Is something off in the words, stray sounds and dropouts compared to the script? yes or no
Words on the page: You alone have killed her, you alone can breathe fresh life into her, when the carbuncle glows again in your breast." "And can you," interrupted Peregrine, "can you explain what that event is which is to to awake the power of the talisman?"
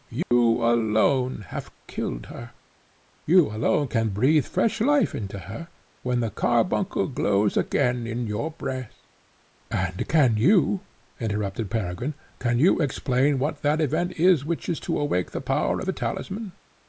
yes